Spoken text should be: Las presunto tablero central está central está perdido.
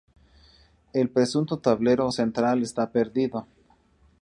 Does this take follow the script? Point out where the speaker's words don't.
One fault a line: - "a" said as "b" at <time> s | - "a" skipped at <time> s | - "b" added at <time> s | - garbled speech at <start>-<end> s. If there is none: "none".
- "Las" said as "El" at 0.9 s
- "central está" skipped at 2.9 s